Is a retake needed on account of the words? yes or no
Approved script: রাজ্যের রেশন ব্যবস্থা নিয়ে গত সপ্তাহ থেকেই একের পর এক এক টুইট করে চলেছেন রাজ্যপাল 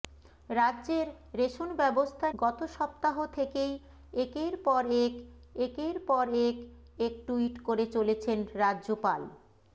yes